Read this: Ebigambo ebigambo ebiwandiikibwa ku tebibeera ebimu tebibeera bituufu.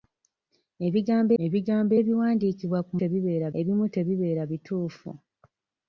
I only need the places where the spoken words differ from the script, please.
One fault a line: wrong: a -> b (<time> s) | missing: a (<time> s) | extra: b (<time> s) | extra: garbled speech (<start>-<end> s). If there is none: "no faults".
no faults